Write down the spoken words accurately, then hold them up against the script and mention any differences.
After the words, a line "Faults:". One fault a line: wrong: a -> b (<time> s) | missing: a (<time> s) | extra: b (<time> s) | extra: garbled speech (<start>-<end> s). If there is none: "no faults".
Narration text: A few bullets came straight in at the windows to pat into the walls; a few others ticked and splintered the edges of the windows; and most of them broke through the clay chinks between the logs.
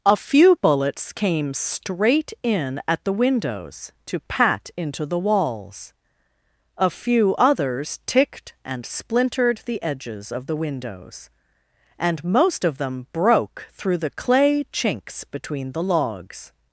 A few bullets came straight in at the windows to pat into the walls; a few others ticked and splintered the edges of the windows; and most of them broke through the clay chinks between the logs.
Faults:
no faults